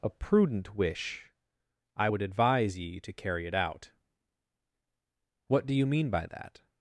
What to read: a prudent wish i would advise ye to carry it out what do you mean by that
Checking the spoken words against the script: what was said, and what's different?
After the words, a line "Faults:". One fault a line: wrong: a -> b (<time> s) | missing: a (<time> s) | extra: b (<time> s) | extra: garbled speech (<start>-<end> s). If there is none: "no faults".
a prudent wish i would advise ye to carry it out what do you mean by that
Faults:
no faults